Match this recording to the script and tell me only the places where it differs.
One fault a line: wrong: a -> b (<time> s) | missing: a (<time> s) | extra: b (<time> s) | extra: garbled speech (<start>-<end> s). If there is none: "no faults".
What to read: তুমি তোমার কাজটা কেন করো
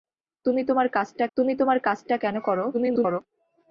extra: তুমি তোমার কাজটা (1.4 s)
extra: garbled speech (2.7-3.2 s)